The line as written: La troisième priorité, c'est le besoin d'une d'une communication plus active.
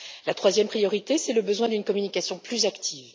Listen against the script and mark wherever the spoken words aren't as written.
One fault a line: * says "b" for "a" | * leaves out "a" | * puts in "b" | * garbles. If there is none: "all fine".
* leaves out "d'une"